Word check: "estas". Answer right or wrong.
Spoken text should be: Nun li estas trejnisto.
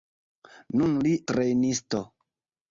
wrong